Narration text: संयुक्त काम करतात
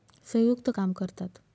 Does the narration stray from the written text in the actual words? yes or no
no